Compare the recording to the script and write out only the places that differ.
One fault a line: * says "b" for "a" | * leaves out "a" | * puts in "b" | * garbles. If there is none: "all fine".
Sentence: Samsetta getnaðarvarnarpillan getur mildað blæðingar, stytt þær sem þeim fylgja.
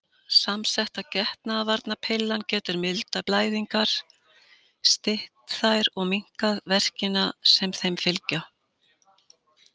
* puts in "og minnkað verkina"